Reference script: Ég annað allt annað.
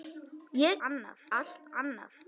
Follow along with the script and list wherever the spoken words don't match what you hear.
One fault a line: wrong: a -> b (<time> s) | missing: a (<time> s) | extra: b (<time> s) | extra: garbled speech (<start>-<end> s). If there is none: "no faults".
no faults